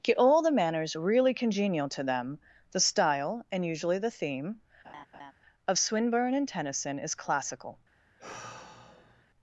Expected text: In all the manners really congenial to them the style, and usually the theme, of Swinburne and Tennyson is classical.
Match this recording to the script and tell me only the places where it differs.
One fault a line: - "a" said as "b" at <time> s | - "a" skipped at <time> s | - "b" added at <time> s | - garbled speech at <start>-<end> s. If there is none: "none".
- "In" said as "Get" at 0.0 s